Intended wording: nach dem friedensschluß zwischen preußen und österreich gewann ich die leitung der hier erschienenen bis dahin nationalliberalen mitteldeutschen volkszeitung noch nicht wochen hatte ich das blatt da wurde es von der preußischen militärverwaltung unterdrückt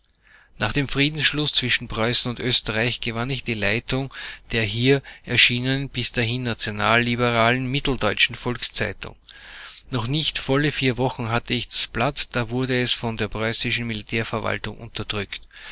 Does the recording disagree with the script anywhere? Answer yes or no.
yes